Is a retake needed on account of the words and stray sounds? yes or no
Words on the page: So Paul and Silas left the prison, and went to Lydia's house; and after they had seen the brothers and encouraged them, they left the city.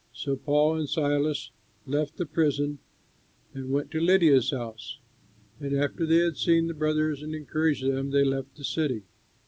no